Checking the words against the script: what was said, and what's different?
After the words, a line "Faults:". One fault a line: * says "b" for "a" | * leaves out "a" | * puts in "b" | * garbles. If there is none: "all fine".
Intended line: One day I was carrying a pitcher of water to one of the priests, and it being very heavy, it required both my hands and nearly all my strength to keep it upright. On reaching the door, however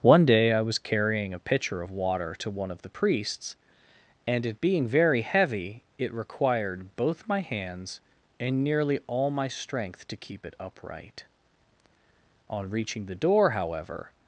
One day I was carrying a pitcher of water to one of the priests, and it being very heavy, it required both my hands and nearly all my strength to keep it upright. On reaching the door, however
Faults:
all fine